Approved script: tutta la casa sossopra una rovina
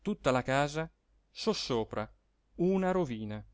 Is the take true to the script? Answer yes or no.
yes